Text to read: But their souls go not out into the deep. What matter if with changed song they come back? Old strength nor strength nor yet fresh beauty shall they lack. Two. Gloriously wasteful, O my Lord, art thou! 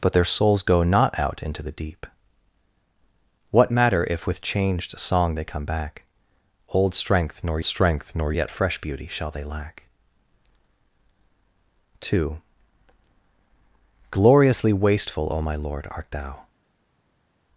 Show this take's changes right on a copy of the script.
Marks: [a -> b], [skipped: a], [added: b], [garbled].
But their souls go not out into the deep. What matter if with changed song they come back? Old strength nor strength nor yet fresh beauty shall they lack. Two. Gloriously wasteful, O my Lord, art thou!